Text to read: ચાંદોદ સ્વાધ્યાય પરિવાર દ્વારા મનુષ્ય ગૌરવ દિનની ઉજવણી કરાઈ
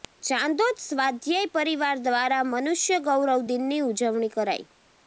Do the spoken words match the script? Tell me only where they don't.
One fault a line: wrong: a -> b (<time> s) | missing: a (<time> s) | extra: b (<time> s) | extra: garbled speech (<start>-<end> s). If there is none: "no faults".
no faults